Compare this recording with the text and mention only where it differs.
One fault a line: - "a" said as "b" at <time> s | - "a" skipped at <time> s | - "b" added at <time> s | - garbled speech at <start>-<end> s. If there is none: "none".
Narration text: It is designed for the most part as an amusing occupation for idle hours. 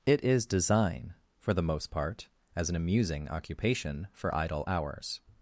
- "designed" said as "design" at 0.5 s